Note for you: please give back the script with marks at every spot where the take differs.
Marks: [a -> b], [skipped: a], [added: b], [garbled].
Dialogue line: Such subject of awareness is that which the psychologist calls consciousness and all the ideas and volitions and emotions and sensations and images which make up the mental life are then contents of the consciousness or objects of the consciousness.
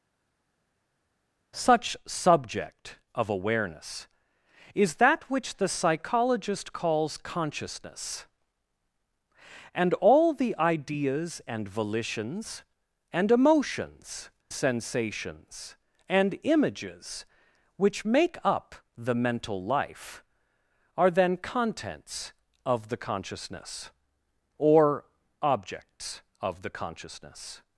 Such subject of awareness is that which the psychologist calls consciousness and all the ideas and volitions and emotions [skipped: and] sensations and images which make up the mental life are then contents of the consciousness or objects of the consciousness.